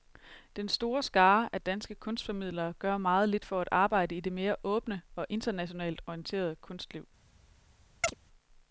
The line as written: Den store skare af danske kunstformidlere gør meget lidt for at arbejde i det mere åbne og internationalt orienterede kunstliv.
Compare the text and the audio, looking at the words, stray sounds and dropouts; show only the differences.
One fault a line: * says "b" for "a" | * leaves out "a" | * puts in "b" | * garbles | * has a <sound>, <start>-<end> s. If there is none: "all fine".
* has a chirp, 8.0-8.1 s